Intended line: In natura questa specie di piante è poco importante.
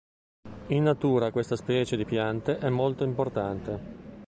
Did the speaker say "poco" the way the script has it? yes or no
no